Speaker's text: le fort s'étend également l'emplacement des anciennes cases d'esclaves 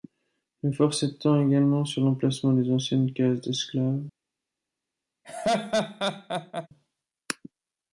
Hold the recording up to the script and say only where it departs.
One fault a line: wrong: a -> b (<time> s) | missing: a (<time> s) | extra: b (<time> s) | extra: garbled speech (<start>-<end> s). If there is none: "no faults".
extra: sur (1.8 s)